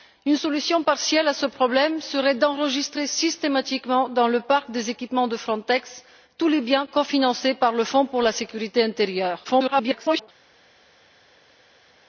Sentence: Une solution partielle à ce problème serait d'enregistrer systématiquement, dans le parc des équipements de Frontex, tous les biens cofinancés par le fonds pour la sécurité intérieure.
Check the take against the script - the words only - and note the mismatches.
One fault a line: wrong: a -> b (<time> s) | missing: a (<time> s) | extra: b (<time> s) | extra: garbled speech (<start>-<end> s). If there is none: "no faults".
extra: garbled speech (9.4-10.3 s)